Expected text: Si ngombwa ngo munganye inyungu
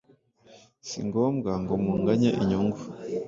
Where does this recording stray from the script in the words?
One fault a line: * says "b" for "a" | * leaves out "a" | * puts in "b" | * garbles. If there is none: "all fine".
all fine